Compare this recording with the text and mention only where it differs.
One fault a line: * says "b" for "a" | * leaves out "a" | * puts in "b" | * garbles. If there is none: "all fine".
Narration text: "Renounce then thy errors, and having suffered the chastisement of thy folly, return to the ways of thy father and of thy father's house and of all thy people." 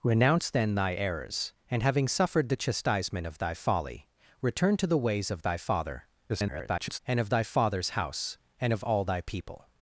* garbles